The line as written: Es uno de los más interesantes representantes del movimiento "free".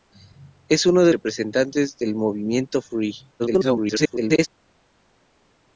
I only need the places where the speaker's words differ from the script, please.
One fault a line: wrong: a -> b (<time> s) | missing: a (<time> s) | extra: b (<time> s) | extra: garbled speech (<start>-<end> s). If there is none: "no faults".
missing: los más interesantes (1.1 s)
extra: garbled speech (3.4-4.5 s)